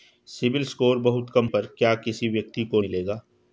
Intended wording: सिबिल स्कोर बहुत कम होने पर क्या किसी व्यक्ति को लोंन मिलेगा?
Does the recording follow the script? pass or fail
fail